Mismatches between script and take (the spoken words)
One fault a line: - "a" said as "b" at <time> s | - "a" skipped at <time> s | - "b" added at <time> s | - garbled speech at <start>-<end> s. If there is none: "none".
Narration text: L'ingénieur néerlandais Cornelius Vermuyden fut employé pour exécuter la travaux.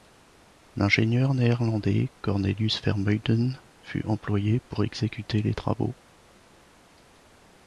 - "la" said as "les" at 5.4 s